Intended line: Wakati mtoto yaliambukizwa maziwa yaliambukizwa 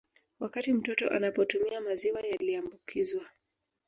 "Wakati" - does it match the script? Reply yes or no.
yes